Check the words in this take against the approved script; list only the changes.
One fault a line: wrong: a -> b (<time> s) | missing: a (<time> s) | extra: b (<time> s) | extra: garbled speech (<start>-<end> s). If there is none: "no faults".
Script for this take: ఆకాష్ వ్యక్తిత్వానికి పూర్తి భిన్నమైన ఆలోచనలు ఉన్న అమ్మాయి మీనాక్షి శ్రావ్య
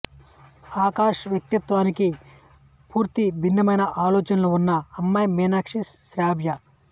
no faults